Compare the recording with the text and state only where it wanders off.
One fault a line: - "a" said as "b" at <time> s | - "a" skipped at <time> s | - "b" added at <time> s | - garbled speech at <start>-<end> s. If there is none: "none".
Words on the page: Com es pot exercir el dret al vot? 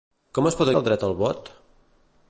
- "exercir" skipped at 0.7 s